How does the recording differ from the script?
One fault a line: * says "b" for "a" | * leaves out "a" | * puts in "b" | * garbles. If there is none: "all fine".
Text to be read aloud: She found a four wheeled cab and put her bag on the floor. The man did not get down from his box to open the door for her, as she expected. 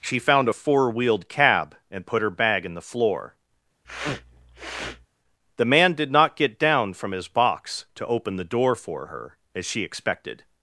* says "in" for "on"